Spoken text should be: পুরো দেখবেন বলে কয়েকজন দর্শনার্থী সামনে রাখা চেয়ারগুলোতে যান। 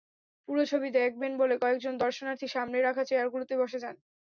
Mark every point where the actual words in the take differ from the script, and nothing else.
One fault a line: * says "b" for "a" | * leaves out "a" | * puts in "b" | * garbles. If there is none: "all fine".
* puts in "ছবি"
* puts in "বসে"